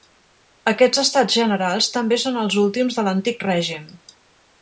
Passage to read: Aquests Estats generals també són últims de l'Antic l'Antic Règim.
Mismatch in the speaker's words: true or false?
true